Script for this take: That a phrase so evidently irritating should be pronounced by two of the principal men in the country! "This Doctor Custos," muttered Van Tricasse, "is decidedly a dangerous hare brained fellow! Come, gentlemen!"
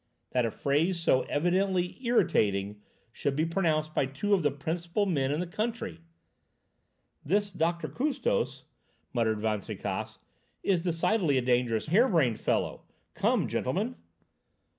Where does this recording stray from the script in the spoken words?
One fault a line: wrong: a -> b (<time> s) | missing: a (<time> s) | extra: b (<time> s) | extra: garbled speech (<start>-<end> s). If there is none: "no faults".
no faults